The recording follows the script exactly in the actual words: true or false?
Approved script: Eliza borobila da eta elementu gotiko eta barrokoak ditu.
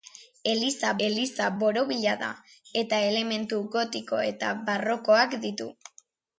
false